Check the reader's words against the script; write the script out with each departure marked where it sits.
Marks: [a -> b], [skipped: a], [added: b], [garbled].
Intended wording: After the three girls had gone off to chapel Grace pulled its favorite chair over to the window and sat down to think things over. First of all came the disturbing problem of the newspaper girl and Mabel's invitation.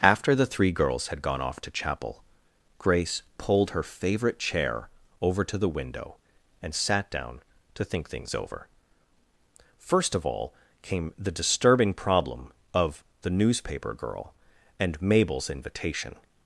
After the three girls had gone off to chapel Grace pulled [its -> her] favorite chair over to the window and sat down to think things over. First of all came the disturbing problem of the newspaper girl and Mabel's invitation.